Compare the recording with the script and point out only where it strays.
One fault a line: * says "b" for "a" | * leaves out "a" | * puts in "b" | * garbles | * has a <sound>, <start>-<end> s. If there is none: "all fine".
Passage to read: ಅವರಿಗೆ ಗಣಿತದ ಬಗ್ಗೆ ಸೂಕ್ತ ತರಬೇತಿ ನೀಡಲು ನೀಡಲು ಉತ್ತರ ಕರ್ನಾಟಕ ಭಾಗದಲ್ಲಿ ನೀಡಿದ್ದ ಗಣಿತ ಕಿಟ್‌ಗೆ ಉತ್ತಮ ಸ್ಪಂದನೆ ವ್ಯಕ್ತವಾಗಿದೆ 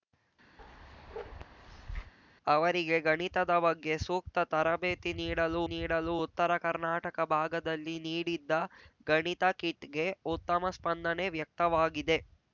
* has a bark, 0.6-2.1 s